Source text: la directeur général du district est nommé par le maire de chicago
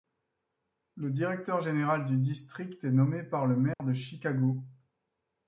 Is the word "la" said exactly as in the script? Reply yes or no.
no